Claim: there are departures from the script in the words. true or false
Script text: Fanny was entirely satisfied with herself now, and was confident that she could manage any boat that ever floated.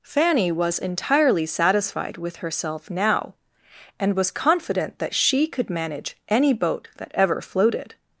false